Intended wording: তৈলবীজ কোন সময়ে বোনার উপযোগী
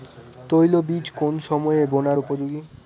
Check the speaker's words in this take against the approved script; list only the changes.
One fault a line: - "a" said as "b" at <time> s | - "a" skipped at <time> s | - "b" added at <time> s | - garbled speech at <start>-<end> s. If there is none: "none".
none